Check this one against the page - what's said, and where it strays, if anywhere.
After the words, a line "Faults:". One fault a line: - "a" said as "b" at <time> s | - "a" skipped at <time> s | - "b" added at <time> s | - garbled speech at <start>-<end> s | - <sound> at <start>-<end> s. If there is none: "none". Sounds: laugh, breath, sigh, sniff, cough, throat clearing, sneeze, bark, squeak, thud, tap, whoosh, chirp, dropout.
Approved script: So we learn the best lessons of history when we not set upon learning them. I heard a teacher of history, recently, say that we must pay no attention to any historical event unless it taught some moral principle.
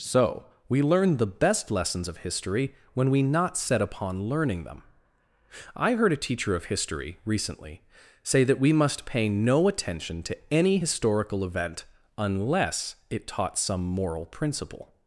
So we learn the best lessons of history when we not set upon learning them. I heard a teacher of history, recently, say that we must pay no attention to any historical event unless it taught some moral principle.
Faults:
none